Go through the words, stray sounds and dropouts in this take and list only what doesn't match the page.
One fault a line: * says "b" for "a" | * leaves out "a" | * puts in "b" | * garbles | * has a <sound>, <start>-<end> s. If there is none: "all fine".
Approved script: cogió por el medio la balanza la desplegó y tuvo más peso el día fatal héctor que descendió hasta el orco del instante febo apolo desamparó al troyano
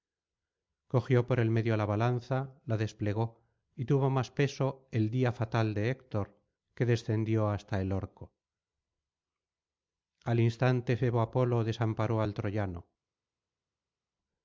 * puts in "de"
* says "al" for "del"